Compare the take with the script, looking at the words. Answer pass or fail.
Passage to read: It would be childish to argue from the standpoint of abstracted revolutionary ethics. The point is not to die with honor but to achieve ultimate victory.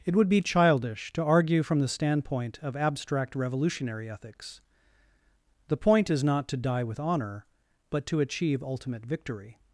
fail